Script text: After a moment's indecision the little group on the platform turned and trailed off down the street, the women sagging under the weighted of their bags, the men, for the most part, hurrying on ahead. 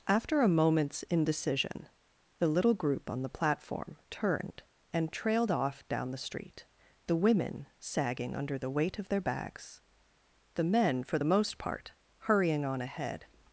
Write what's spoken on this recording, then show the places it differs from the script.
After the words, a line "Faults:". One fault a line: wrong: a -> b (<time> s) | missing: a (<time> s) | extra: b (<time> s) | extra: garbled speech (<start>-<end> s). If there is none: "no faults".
After a moment's indecision the little group on the platform turned and trailed off down the street, the women sagging under the weight of their bags, the men, for the most part, hurrying on ahead.
Faults:
wrong: weighted -> weight (8.7 s)